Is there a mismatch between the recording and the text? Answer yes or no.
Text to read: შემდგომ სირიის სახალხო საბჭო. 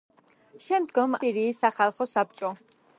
no